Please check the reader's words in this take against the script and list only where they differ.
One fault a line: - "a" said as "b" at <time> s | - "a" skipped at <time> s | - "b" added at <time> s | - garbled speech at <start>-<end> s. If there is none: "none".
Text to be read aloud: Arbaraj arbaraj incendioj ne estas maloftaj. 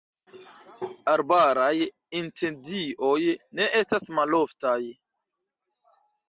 - "arbaraj" skipped at 1.7 s